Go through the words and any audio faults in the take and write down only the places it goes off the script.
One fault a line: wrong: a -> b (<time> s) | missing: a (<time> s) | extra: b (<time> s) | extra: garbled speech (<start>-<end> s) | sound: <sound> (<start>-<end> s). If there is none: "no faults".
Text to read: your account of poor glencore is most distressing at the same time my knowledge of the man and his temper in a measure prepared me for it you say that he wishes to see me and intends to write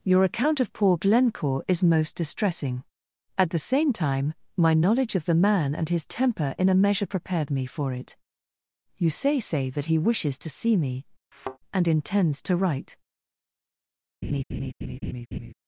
extra: say (9.4 s)
sound: thud (11.3-11.6 s)
sound: laugh (14.2-15.5 s)